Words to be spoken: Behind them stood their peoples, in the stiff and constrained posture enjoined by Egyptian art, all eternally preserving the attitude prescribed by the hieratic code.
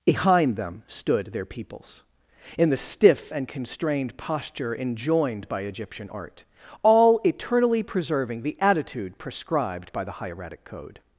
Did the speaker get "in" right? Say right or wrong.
right